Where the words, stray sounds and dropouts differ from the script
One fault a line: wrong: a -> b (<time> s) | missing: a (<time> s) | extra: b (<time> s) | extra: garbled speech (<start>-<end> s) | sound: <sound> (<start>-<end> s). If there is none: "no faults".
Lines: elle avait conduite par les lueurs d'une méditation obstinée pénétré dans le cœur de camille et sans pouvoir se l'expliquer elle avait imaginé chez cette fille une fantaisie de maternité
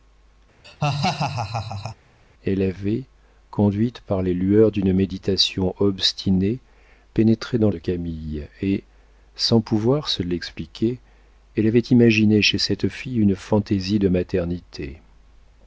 sound: laugh (0.6-2.0 s)
missing: le cœur (7.7 s)